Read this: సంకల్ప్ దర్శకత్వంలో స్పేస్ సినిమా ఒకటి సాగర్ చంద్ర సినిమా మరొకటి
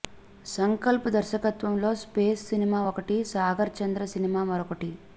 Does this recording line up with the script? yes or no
yes